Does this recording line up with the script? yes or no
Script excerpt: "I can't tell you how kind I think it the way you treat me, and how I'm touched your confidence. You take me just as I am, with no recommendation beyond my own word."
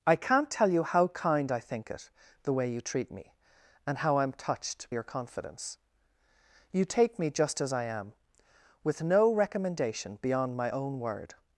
yes